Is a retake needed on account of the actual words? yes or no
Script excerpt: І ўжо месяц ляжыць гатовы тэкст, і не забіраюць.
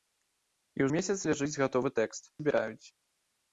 yes